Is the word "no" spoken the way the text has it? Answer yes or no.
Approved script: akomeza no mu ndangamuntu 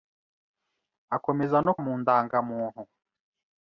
yes